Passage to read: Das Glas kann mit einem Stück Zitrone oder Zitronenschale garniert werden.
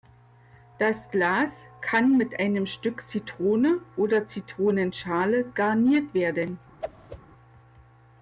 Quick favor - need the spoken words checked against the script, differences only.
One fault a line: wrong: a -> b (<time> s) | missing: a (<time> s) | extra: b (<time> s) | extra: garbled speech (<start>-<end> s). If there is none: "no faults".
no faults